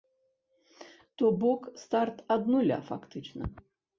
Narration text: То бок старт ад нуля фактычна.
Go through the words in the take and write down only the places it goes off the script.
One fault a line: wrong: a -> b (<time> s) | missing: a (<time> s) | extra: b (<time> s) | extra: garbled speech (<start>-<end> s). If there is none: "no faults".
no faults